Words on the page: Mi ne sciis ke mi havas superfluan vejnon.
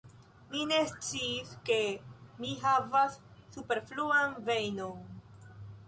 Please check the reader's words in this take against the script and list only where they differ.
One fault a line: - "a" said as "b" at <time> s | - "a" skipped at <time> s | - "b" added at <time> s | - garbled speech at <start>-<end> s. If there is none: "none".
none